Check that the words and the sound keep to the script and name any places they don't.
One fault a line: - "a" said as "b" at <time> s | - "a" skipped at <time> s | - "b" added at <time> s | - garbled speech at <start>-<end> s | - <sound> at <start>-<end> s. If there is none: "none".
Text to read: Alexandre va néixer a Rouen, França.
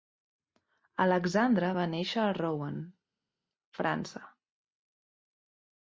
none